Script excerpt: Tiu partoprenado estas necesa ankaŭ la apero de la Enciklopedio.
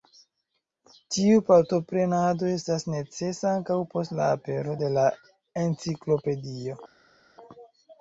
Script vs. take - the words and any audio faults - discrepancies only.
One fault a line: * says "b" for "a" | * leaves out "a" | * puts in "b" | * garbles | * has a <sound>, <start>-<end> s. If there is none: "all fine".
* puts in "post"